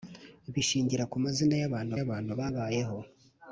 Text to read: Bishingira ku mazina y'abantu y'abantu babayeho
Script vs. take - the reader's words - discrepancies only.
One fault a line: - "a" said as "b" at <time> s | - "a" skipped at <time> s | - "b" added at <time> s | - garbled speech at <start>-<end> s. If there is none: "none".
none